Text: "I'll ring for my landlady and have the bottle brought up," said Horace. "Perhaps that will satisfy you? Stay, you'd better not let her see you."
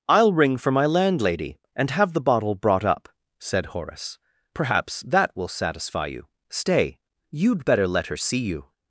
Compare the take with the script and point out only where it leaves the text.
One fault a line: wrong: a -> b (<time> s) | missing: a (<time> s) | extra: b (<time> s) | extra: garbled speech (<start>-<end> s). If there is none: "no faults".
missing: not (7.9 s)